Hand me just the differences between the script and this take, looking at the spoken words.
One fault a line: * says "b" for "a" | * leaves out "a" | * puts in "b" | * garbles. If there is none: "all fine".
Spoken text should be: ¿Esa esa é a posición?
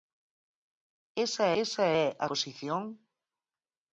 all fine